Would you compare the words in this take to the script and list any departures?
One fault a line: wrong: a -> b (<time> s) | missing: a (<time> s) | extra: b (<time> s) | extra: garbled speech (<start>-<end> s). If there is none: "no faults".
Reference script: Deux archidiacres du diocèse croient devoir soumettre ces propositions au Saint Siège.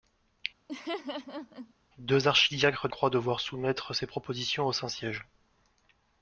missing: du diocèse (2.9 s)